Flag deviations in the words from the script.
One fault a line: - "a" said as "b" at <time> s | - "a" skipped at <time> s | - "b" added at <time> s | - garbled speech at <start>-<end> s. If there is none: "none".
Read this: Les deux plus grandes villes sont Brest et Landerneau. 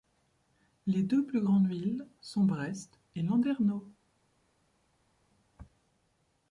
none